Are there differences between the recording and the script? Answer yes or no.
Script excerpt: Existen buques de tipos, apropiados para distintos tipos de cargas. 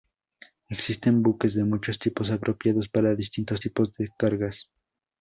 yes